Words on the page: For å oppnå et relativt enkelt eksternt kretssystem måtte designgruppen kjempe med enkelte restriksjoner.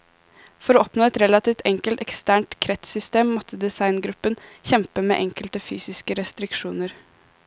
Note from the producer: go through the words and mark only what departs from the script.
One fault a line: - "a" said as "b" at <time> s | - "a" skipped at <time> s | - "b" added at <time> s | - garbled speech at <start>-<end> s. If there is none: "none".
- "fysiske" added at 5.7 s